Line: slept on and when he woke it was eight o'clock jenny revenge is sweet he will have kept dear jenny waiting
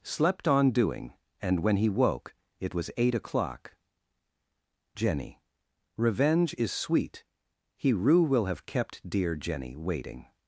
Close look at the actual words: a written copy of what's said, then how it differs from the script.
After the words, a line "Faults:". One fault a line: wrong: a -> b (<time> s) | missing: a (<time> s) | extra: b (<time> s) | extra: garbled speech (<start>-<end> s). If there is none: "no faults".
slept on doing and when he woke it was eight o'clock jenny revenge is sweet he rue will have kept dear jenny waiting
Faults:
extra: doing (0.7 s)
extra: rue (7.9 s)